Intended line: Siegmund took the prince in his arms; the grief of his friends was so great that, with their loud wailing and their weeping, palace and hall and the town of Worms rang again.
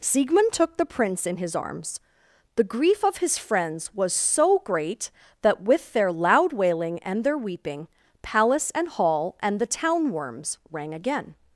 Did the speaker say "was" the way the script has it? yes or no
yes